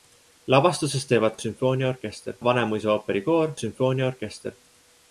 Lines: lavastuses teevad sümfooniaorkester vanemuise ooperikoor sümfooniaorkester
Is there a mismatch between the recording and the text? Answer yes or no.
no